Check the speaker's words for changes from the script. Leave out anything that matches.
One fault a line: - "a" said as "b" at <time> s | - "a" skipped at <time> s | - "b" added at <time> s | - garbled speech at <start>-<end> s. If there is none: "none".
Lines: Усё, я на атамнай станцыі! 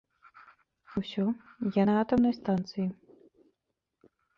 none